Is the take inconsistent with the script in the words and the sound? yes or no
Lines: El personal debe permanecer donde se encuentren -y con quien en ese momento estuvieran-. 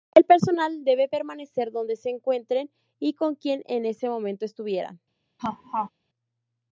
yes